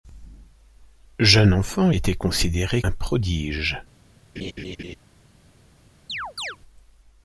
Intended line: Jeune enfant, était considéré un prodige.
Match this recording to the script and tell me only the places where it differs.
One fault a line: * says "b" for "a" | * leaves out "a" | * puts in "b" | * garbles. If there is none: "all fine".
all fine